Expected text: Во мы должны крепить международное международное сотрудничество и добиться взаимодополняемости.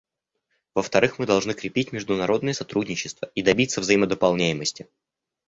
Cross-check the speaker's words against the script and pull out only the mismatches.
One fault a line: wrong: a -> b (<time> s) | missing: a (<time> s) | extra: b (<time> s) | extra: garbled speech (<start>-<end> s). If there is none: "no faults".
extra: вторых (0.8 s)
missing: международное (2.5 s)